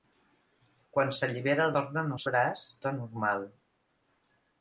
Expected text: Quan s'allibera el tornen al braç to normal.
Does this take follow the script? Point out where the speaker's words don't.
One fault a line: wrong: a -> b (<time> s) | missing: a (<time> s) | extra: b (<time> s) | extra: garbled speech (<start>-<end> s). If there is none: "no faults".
no faults